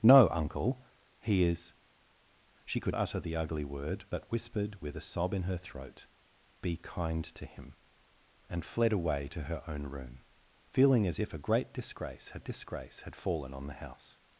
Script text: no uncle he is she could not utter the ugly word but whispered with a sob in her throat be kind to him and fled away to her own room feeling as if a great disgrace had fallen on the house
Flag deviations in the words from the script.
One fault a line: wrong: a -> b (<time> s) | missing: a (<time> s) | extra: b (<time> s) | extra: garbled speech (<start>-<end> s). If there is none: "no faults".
missing: not (3.0 s)
extra: disgrace had (12.4 s)